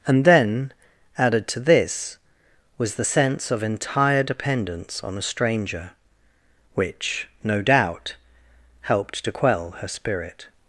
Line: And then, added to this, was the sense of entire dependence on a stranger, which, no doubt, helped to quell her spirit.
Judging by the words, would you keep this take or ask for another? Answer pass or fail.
pass